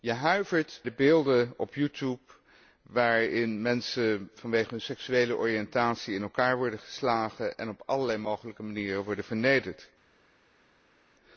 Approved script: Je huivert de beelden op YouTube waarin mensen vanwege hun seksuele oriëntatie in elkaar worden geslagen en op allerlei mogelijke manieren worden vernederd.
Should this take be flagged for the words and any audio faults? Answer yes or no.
no